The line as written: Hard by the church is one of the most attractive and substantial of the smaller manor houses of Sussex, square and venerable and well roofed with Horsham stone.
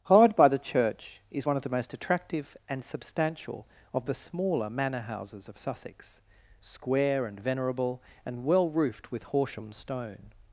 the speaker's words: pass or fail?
pass